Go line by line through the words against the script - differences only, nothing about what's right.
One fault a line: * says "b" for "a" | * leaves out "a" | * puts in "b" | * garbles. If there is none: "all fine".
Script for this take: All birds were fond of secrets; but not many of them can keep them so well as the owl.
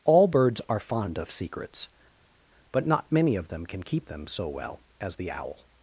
* says "are" for "were"